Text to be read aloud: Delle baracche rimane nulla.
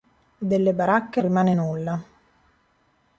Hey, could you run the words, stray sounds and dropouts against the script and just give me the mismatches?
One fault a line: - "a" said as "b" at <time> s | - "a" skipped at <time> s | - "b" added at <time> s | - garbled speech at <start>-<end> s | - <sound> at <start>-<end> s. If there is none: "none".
none